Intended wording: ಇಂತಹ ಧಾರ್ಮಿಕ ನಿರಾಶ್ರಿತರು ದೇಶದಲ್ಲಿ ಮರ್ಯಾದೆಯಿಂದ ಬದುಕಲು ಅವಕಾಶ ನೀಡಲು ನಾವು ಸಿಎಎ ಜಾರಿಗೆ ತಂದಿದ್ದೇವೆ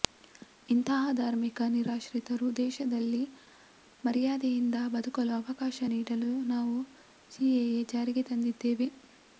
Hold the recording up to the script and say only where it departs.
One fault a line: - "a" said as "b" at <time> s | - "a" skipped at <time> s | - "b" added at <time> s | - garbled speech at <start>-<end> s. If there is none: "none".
none